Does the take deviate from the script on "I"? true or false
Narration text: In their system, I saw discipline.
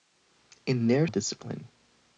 true